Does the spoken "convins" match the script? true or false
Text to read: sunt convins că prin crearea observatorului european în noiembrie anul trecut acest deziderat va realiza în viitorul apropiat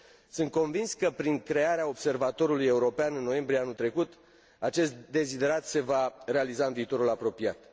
true